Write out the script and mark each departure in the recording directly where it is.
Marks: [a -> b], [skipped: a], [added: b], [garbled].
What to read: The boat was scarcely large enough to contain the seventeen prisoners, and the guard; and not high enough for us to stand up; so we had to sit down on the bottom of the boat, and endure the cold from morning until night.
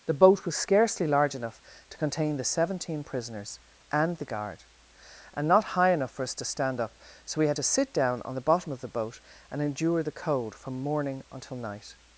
The boat was scarcely large enough to contain the seventeen prisoners, and the guard; and not high enough for us to stand up; so we had to sit down on the bottom of the boat, and endure the cold from morning until night.